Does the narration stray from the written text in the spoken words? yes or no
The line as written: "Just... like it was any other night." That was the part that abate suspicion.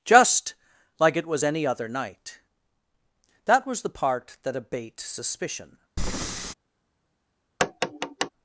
no